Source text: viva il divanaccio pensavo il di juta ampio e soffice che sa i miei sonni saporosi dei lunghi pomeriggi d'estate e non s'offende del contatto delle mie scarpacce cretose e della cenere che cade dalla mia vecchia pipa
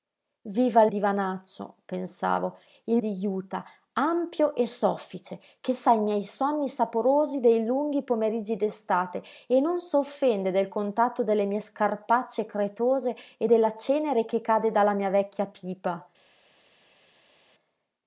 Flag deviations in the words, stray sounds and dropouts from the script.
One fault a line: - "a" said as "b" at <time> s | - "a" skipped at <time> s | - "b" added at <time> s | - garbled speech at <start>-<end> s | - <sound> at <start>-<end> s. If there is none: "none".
none